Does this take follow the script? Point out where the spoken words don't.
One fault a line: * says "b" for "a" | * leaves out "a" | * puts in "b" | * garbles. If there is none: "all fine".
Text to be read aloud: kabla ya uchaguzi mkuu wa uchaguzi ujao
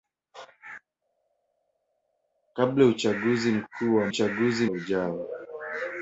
all fine